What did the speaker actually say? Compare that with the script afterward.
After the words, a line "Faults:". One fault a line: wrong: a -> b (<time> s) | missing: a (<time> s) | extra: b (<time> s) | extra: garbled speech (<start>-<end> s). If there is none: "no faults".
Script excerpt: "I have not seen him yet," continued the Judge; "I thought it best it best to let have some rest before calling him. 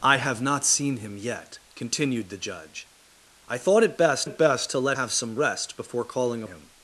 "I have not seen him yet," continued the Judge; "I thought it best it best to let have some rest before calling him.
Faults:
no faults